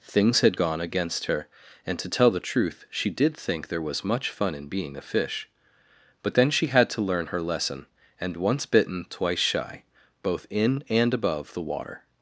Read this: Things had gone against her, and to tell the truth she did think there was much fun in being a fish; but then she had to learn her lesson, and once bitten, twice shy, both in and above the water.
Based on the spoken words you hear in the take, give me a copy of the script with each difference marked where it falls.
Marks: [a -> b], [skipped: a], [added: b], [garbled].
Things had gone against her, and to tell the truth she did think there was much fun in being a fish; but then she had to learn her lesson, and once bitten, twice shy, both in and above the water.